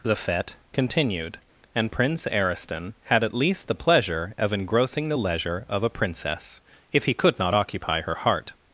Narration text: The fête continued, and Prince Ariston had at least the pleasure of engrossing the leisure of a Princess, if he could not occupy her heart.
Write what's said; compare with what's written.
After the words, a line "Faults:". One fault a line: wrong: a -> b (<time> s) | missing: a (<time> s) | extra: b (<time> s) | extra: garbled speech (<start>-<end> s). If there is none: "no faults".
The fête continued, and Prince Ariston had at least the pleasure of engrossing the leisure of a Princess, if he could not occupy her heart.
Faults:
no faults